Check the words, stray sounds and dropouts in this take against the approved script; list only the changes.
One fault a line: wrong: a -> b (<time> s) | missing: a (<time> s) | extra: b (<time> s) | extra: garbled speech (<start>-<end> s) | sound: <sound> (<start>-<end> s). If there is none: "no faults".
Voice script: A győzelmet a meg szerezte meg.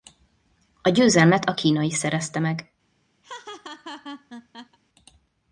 wrong: meg -> kínai (1.5 s)
sound: laugh (3.2-4.8 s)